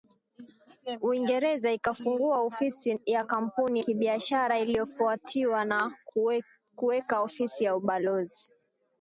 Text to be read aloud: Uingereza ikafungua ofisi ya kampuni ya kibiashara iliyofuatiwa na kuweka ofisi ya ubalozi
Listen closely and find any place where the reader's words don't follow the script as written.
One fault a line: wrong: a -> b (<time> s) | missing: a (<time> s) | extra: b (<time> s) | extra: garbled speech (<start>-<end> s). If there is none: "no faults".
missing: ya (3.8 s)